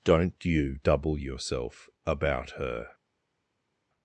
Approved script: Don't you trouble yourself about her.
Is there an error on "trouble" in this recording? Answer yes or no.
yes